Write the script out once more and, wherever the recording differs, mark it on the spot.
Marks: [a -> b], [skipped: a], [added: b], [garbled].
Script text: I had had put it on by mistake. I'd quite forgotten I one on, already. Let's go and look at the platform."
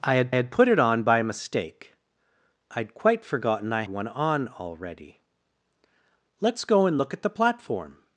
I had had put it on by mistake. I'd quite forgotten I one on, already. Let's go and look at the platform."